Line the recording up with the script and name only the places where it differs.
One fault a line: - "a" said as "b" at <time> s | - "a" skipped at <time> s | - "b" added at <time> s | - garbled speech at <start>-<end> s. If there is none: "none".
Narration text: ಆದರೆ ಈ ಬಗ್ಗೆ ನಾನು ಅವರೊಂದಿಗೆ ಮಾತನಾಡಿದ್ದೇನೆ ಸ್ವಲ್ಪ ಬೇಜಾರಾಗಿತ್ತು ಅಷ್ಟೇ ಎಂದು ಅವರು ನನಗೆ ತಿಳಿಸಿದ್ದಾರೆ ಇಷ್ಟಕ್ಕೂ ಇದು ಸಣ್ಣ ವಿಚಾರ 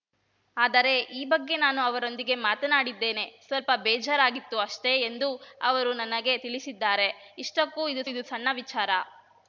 - "ಇದು" added at 8.1 s